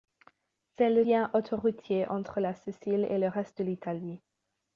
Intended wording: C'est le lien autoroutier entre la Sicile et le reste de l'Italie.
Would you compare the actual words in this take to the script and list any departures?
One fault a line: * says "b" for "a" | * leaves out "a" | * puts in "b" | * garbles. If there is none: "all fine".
all fine